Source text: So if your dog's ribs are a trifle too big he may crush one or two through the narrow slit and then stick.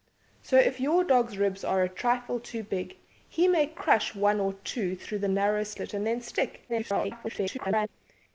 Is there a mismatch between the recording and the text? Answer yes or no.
yes